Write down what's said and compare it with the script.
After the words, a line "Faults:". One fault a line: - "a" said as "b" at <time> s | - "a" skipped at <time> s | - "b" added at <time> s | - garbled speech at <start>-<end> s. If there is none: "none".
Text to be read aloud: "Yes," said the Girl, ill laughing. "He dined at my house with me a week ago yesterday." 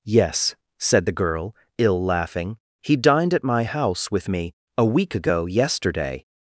"Yes," said the Girl, ill laughing. "He dined at my house with me a week ago yesterday."
Faults:
none